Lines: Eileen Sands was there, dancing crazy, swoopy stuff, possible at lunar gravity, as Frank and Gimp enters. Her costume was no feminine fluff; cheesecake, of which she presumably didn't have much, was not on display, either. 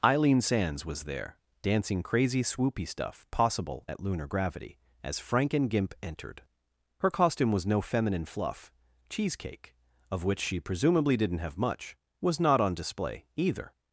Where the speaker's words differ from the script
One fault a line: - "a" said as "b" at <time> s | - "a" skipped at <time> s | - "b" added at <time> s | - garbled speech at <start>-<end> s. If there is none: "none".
- "enters" said as "entered" at 6.0 s